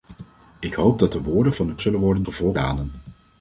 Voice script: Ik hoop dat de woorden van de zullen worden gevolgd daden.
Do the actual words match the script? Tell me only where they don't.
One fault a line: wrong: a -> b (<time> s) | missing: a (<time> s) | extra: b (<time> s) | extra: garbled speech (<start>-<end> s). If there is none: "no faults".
no faults